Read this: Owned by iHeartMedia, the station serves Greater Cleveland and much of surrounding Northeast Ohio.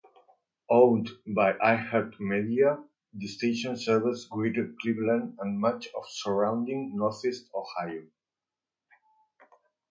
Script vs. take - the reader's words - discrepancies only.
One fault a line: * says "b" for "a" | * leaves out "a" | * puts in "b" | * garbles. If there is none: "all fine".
all fine